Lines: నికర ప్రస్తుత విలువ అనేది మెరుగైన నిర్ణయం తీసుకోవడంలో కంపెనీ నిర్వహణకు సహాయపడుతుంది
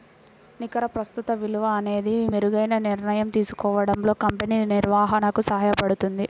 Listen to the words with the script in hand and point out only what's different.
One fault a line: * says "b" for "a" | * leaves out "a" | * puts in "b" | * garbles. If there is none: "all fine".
all fine